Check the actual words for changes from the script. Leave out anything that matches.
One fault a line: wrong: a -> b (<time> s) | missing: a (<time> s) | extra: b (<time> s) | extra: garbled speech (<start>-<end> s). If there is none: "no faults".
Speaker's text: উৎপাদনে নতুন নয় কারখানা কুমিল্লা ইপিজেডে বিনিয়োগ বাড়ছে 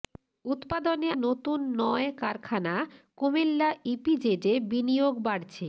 no faults